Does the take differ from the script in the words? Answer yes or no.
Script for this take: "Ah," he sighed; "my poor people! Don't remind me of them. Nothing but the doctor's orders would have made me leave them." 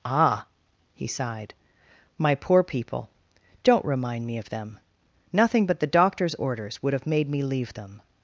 no